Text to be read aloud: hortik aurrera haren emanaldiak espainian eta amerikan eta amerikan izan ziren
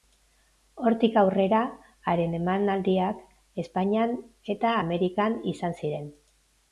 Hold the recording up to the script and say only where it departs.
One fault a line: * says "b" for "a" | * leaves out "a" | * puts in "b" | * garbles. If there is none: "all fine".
* leaves out "eta amerikan"